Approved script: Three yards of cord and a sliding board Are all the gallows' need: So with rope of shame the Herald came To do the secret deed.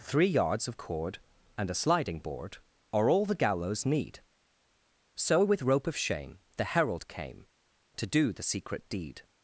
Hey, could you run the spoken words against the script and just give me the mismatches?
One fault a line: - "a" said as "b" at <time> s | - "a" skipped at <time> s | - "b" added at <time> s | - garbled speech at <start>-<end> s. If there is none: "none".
none